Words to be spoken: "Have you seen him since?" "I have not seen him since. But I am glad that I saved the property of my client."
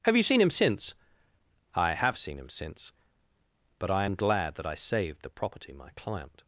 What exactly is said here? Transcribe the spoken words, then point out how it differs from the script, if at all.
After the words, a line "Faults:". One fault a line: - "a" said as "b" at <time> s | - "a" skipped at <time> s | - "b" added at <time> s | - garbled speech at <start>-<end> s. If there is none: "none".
"Have you seen him since?" "I have seen him since. But I am glad that I saved the property my client."
Faults:
- "not" skipped at 2.2 s
- "of" skipped at 5.7 s